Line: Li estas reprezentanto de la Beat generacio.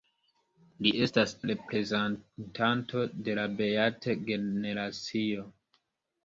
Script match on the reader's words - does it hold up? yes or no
yes